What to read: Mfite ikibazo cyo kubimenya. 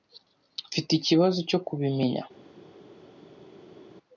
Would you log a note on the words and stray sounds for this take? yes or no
no